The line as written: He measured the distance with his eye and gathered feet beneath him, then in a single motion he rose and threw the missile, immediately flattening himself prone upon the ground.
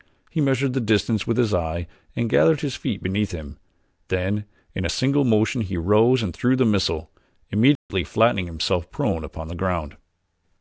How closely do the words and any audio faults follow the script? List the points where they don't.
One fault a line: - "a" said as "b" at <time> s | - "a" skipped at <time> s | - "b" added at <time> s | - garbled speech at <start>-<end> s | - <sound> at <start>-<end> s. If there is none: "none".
- "his" added at 2.6 s
- dropout at 7.8-7.9 s